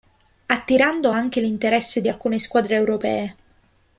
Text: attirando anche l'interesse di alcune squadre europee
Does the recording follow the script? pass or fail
pass